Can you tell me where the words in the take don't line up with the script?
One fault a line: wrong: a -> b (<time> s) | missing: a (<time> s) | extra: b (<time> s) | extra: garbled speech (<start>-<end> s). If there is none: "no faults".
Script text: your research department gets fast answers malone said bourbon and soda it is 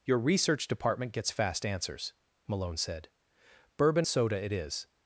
missing: and (4.1 s)